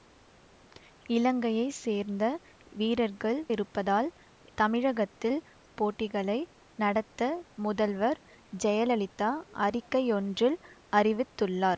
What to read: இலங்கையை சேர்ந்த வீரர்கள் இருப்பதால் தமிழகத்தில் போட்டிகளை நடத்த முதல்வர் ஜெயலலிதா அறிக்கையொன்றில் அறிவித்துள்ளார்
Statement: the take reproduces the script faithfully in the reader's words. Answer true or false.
true